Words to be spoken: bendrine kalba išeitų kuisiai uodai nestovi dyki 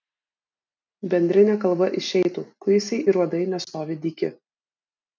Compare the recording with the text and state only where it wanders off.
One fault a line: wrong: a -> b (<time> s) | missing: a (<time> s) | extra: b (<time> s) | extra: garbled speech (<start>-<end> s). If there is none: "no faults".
extra: ir (3.1 s)